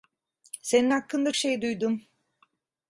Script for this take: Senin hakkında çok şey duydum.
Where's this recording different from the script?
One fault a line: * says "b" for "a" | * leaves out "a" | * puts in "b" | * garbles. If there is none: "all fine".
* leaves out "çok"